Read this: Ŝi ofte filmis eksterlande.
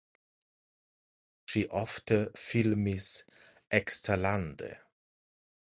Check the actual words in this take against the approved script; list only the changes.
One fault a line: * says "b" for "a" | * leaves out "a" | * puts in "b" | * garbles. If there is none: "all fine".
all fine